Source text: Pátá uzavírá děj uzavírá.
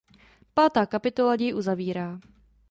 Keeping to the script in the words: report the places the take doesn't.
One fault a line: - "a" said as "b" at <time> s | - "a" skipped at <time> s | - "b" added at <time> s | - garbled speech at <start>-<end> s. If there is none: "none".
- "uzavírá" said as "kapitola" at 0.8 s